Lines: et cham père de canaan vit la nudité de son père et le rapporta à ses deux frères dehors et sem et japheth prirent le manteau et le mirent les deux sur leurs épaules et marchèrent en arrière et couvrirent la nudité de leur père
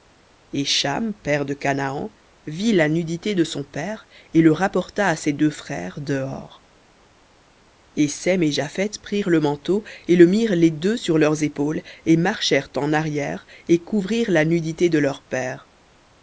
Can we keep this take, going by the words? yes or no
yes